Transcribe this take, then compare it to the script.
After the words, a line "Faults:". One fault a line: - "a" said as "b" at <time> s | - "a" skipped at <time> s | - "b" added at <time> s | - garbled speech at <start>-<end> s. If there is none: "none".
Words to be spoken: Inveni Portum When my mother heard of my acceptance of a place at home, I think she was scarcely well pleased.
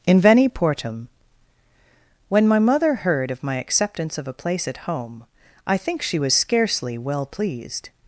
Inveni Portum When my mother heard of my acceptance of a place at home, I think she was scarcely well pleased.
Faults:
none